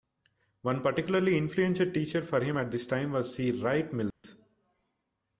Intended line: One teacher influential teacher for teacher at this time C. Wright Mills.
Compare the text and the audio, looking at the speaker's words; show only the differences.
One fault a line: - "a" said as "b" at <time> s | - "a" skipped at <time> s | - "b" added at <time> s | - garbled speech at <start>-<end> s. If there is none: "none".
- "teacher" said as "particularly" at 0.8 s
- "teacher" said as "him" at 2.4 s
- "was" added at 3.1 s